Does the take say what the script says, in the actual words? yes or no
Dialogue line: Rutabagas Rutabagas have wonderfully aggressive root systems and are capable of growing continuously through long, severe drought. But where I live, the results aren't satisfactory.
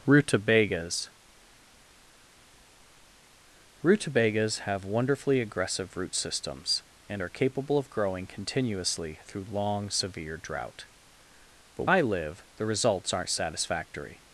no